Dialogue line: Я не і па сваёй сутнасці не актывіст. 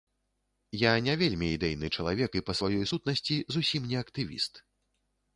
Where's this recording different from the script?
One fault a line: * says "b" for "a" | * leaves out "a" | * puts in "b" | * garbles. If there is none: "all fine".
* puts in "вельмі ідэйны чалавек"
* puts in "зусім"